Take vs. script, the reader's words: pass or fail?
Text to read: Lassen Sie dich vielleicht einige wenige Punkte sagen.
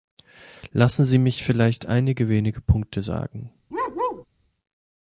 fail